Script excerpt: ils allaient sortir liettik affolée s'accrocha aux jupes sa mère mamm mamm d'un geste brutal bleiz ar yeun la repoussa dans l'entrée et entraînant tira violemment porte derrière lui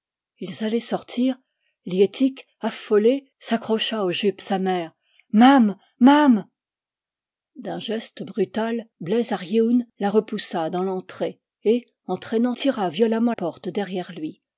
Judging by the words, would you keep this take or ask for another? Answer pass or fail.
pass